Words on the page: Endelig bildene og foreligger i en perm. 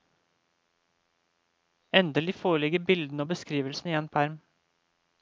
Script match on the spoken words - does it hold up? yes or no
no